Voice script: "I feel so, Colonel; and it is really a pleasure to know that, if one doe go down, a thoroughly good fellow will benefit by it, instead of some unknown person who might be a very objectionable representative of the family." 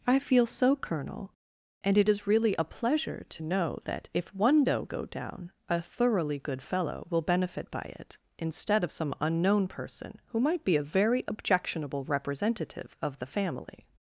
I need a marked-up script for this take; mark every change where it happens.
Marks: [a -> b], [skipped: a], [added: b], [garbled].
"I feel so, Colonel; and it is really a pleasure to know that, if one doe go down, a thoroughly good fellow will benefit by it, instead of some unknown person who might be a very objectionable representative of the family."